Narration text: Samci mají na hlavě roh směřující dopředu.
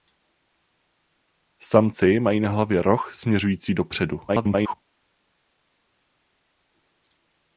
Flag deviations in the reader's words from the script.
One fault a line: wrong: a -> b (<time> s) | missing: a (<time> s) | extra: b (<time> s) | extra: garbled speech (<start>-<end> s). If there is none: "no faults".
extra: garbled speech (4.3-4.7 s)